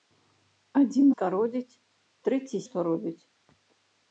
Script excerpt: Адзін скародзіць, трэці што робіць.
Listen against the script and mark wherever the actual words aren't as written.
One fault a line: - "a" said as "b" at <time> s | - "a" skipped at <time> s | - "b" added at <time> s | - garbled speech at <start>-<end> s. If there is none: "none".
none